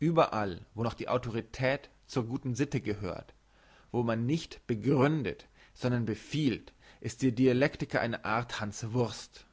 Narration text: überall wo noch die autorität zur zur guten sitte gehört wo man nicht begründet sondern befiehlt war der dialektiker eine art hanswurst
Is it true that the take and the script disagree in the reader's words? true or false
true